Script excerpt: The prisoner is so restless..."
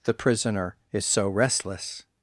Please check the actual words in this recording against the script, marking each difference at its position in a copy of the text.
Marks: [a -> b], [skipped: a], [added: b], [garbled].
The prisoner is so restless..."